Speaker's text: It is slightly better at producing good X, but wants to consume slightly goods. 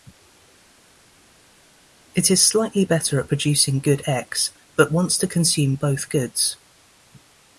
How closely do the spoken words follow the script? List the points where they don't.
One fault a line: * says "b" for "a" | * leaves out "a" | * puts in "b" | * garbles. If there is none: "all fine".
* says "both" for "slightly"